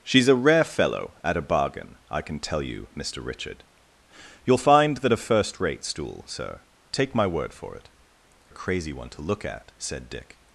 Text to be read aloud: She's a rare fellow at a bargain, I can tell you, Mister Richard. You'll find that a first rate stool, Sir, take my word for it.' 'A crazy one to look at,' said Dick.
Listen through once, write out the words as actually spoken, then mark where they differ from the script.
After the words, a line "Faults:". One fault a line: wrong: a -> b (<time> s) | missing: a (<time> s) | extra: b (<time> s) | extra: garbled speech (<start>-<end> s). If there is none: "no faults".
She's a rare fellow at a bargain, I can tell you, Mister Richard. You'll find that a first rate stool, Sir, take my word for it.' 'A crazy one to look at,' said Dick.
Faults:
no faults